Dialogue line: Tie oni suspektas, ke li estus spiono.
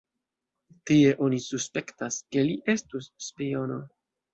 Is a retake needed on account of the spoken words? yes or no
no